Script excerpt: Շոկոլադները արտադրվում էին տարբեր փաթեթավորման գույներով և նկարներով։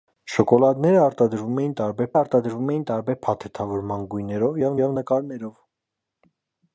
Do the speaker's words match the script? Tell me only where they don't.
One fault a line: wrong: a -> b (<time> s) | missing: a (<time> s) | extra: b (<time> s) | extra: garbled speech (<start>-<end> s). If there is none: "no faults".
extra: արտադրվում էին տարբեր (2.2 s)
extra: և (4.8 s)